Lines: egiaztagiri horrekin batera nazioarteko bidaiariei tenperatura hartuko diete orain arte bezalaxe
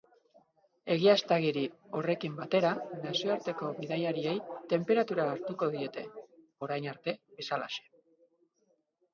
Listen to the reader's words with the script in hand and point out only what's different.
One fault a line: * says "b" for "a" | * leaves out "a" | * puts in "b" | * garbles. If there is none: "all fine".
all fine